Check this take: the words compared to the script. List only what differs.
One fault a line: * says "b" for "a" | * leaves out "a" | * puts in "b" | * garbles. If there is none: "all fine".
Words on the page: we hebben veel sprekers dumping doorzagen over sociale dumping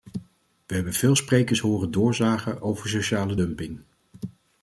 * says "horen" for "dumping"